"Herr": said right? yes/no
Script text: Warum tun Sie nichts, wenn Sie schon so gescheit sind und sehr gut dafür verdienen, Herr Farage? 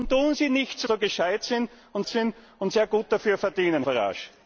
no